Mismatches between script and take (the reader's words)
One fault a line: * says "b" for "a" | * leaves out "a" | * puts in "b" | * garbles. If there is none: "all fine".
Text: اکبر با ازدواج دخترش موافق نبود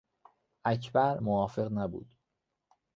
* leaves out "با ازدواج دخترش"